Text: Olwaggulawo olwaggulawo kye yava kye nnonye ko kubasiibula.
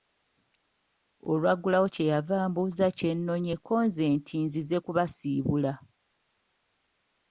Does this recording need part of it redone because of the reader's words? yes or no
yes